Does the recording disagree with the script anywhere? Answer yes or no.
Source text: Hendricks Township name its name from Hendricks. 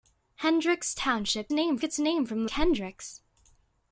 no